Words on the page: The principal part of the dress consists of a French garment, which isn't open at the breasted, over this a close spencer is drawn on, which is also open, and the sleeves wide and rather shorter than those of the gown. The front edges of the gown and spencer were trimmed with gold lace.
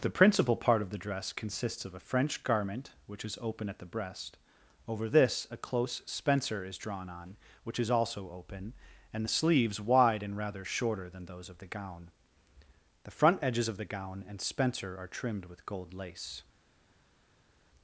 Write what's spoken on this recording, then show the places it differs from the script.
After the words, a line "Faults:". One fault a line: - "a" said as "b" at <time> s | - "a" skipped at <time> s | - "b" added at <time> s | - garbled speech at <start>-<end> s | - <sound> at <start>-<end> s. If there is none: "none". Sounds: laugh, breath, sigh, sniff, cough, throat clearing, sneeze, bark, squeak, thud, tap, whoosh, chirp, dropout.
The principal part of the dress consists of a French garment, which is open at the breast, over this a close spencer is drawn on, which is also open, and the sleeves wide and rather shorter than those of the gown. The front edges of the gown and spencer are trimmed with gold lace.
Faults:
- "isn't" said as "is" at 3.2 s
- "breasted" said as "breast" at 3.9 s
- "were" said as "are" at 15.0 s